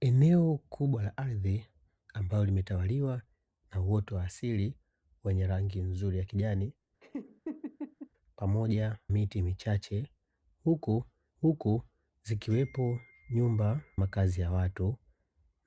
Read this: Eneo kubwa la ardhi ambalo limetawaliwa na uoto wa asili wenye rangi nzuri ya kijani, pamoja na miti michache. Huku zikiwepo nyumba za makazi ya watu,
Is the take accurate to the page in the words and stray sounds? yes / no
no